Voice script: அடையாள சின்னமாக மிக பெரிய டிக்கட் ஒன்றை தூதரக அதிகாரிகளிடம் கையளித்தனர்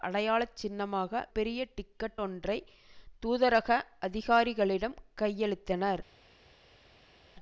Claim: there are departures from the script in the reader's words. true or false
true